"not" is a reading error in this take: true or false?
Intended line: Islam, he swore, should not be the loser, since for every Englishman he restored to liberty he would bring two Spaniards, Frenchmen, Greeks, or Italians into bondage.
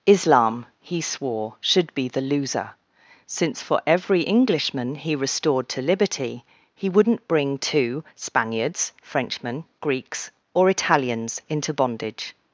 true